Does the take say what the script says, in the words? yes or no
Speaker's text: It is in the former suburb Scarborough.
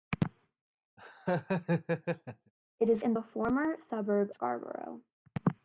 yes